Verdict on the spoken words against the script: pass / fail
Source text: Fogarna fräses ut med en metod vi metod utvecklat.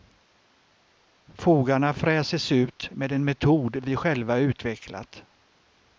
fail